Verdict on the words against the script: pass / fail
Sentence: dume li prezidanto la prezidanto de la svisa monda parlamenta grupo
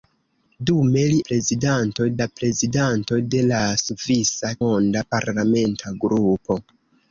pass